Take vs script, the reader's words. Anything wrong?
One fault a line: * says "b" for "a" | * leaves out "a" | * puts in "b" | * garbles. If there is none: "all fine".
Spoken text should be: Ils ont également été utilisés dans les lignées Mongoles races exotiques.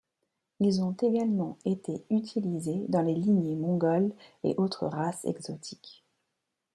* puts in "et autres"